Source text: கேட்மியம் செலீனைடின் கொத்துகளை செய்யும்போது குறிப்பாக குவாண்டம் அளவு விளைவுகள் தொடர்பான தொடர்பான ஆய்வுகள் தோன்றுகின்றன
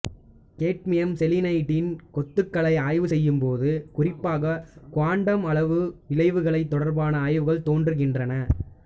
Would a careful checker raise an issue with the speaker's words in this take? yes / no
yes